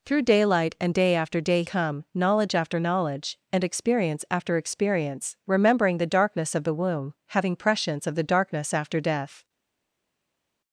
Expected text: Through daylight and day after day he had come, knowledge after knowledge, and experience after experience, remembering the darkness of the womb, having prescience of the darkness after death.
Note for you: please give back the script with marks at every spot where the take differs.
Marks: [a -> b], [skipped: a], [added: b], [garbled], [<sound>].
Through daylight and day after day [skipped: he had] come, knowledge after knowledge, and experience after experience, remembering the darkness of the womb, having prescience of the darkness after death.